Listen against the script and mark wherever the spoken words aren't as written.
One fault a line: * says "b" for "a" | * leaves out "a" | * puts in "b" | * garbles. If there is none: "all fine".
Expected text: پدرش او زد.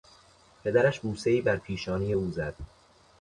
* puts in "بوسهای بر پیشانی"